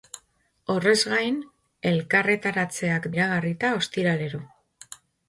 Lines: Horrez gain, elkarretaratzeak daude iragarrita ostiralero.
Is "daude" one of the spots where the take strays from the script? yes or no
yes